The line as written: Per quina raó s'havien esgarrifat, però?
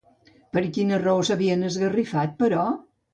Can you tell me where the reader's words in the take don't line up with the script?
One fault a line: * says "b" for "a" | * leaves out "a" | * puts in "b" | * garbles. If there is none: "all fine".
all fine